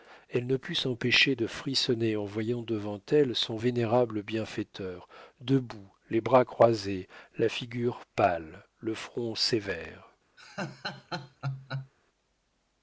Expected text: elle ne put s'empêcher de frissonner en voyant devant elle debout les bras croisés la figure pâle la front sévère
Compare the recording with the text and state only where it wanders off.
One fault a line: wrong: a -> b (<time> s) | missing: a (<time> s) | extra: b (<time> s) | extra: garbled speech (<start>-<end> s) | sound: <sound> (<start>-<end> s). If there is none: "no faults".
extra: son vénérable bienfaiteur (3.4 s)
wrong: la -> le (8.8 s)
sound: laugh (10.4-11.9 s)